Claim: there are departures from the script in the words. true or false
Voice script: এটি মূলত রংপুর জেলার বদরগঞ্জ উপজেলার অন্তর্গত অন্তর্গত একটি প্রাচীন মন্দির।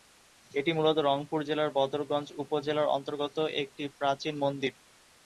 true